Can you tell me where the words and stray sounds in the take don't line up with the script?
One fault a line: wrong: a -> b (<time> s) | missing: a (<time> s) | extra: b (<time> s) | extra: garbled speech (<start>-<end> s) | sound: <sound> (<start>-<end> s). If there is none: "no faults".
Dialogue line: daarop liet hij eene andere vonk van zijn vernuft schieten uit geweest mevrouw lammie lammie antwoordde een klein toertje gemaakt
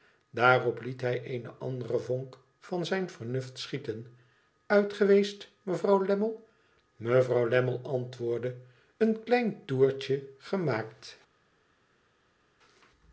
extra: mevrouw (7.0 s)